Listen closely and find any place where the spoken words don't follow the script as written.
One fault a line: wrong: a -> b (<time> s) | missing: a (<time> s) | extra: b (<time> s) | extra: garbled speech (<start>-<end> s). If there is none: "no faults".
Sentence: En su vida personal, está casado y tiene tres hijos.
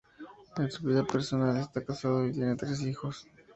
no faults